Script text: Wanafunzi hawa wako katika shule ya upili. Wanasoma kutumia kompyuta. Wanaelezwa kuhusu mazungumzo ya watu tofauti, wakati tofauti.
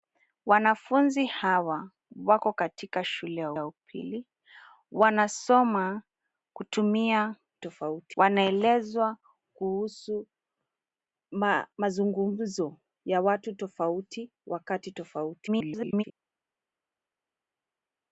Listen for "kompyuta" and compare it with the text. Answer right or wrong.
wrong